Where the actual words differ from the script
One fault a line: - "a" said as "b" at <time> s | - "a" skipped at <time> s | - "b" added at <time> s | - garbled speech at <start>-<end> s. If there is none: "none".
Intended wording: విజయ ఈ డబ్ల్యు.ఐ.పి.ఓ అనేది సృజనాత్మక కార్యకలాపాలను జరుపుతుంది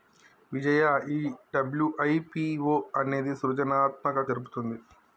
- "కార్యకలాపాలను" skipped at 4.3 s